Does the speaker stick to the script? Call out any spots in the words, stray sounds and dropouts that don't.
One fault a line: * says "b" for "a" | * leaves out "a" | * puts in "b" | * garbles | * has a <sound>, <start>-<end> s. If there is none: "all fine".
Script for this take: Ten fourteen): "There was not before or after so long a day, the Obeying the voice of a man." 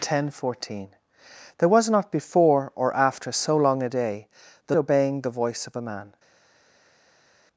all fine